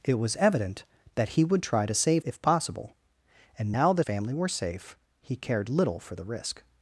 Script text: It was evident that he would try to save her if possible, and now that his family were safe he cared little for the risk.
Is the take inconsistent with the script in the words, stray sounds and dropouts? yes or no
yes